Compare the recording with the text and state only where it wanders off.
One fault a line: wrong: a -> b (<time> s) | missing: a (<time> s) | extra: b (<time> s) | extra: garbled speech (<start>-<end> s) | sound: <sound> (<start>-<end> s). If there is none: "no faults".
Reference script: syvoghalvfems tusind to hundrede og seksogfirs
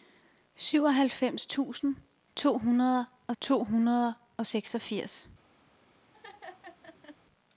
extra: to hundrede og (3.4 s)
sound: laugh (6.1-7.2 s)